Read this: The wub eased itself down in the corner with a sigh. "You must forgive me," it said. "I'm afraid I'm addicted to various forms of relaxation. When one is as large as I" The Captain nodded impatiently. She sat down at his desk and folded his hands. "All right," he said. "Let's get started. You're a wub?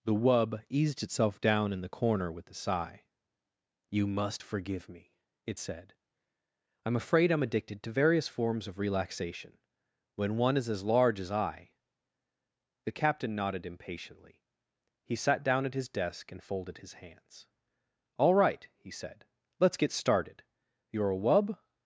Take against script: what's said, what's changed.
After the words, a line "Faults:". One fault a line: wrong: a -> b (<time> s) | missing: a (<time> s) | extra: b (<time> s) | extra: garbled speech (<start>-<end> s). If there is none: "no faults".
The wub eased itself down in the corner with a sigh. "You must forgive me," it said. "I'm afraid I'm addicted to various forms of relaxation. When one is as large as I" The Captain nodded impatiently. He sat down at his desk and folded his hands. "All right," he said. "Let's get started. You're a wub?
Faults:
wrong: She -> He (15.0 s)